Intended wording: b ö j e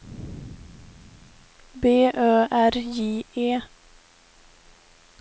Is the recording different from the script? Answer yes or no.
yes